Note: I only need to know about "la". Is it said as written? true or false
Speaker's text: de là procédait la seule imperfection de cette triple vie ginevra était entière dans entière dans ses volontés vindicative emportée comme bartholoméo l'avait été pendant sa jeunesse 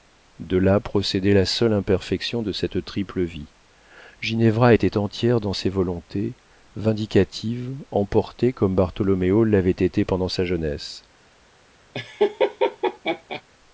true